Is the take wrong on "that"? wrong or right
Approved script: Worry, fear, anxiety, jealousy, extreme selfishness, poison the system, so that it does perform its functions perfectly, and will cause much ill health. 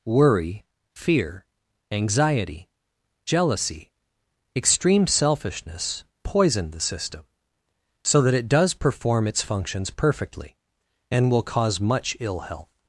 right